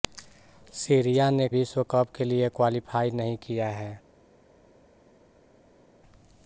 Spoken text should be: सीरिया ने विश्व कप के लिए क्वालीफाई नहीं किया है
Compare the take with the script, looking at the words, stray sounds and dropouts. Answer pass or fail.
pass